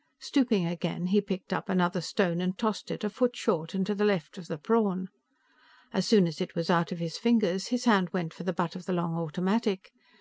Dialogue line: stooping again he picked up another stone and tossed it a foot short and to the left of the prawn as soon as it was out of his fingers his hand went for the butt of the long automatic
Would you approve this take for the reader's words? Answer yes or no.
yes